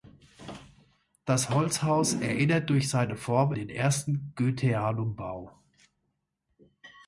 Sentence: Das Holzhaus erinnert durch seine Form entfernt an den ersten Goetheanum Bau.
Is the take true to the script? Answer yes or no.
no